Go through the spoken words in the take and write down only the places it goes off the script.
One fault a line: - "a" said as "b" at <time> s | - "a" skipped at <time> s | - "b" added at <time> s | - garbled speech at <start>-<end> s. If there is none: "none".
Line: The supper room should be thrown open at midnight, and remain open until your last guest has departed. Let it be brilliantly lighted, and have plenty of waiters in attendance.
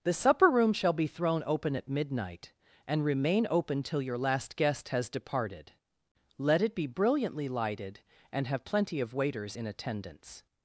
- "should" said as "shall" at 0.7 s
- "until" said as "till" at 3.8 s